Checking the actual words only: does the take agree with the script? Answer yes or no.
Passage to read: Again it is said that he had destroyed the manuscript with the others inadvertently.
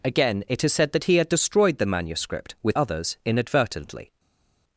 no